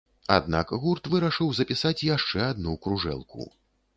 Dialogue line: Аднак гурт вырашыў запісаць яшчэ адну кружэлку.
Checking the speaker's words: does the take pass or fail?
pass